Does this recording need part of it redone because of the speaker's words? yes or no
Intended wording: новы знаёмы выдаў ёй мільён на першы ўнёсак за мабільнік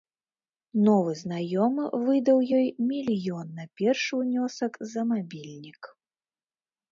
no